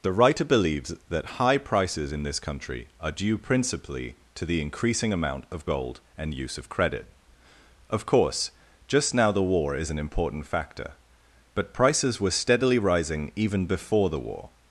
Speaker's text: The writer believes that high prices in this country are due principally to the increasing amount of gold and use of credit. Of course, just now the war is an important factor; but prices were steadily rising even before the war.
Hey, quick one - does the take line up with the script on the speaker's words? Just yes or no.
yes